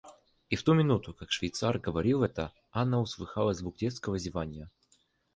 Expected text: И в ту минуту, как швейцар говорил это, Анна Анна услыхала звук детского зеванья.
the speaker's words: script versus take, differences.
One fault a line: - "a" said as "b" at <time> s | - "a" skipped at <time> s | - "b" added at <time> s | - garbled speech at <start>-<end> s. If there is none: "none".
- "Анна" skipped at 3.0 s